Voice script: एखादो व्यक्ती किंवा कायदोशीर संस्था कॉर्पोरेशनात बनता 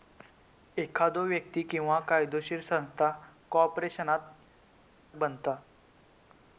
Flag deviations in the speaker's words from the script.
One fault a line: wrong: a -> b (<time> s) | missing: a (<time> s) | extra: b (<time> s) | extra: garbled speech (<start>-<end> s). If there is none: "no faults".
no faults